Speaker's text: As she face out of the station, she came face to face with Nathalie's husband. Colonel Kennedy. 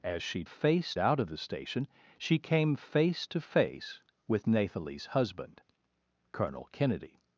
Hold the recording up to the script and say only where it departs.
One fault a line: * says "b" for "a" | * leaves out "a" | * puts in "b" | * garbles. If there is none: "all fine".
all fine